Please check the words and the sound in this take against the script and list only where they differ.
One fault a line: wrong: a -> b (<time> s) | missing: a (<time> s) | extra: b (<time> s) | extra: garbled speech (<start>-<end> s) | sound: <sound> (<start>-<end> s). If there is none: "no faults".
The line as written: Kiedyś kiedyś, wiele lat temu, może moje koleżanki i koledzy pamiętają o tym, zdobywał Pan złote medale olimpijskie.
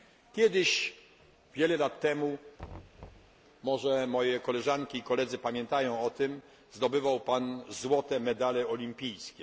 missing: kiedyś (0.9 s)
sound: thud (2.6-3.4 s)